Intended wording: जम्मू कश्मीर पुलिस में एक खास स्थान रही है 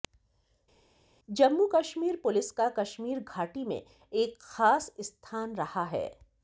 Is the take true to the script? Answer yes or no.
no